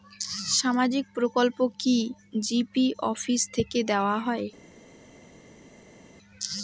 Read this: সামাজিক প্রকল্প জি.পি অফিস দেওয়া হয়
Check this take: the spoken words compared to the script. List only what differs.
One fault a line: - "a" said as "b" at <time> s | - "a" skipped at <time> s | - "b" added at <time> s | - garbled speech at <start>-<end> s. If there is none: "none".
- "কি" added at 1.8 s
- "থেকে" added at 3.6 s